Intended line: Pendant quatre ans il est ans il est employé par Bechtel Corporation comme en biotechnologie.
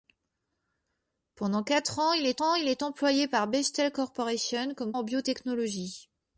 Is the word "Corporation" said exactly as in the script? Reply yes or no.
yes